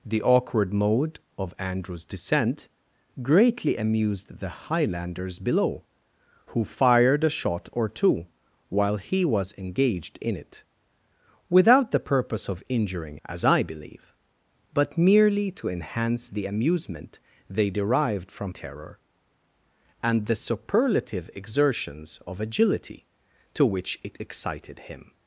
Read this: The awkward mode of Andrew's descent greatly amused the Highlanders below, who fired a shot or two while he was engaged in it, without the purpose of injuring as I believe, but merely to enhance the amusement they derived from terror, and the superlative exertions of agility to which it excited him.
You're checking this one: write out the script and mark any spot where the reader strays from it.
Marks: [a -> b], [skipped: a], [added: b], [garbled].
The awkward mode of Andrew's descent greatly amused the Highlanders below, who fired a shot or two while he was engaged in it, without the purpose of injuring as I believe, but merely to enhance the amusement they derived from terror, and the superlative exertions of agility to which it excited him.